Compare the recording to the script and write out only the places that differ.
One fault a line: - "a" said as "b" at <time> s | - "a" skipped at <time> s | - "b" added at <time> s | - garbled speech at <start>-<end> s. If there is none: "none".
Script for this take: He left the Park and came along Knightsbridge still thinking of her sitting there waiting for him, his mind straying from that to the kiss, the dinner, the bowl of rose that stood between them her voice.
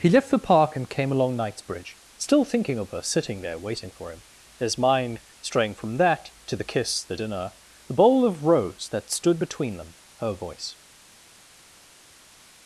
none